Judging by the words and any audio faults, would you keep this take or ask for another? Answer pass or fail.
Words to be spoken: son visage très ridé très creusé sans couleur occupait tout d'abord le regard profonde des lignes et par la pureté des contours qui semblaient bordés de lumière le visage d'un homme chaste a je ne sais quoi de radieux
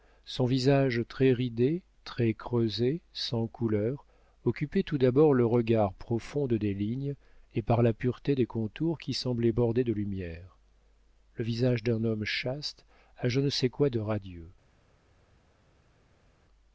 pass